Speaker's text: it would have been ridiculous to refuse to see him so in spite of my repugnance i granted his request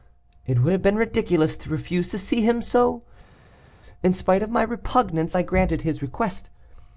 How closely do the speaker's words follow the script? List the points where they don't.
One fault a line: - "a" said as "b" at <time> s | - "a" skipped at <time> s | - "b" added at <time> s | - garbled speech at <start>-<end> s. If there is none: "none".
none